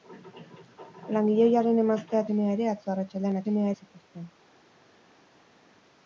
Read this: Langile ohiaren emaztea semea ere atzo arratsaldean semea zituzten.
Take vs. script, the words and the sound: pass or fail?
pass